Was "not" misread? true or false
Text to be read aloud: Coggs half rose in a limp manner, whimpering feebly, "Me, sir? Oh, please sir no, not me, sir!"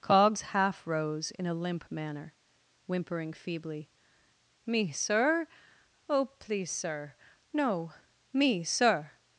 true